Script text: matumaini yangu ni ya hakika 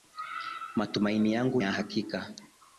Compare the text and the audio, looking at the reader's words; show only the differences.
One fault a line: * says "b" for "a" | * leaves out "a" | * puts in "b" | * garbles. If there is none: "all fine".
* leaves out "ni"